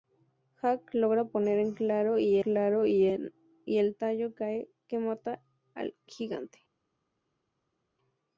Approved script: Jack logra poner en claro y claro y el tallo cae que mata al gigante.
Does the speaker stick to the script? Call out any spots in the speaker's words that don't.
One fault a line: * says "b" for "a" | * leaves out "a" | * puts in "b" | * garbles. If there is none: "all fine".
all fine